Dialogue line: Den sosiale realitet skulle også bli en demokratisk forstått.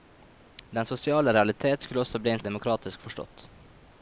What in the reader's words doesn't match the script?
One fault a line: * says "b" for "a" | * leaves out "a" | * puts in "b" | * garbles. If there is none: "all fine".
all fine